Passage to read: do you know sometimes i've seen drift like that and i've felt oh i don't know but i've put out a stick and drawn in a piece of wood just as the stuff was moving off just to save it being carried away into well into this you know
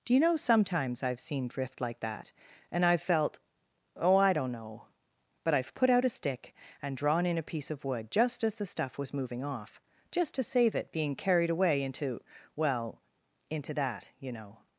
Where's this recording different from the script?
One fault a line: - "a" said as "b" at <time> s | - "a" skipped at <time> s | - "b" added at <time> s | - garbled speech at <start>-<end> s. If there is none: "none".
- "this" said as "that" at 13.7 s